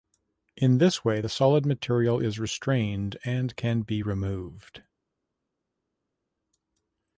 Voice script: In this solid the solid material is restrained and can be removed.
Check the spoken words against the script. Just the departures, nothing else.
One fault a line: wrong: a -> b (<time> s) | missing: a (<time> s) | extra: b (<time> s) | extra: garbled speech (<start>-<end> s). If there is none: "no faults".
wrong: solid -> way (1.1 s)